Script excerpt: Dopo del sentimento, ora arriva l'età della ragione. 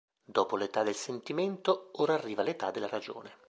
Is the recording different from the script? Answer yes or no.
yes